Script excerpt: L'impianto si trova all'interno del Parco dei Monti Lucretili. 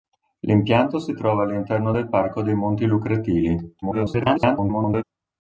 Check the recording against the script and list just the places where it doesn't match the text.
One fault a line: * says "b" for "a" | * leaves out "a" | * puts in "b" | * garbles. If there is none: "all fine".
* garbles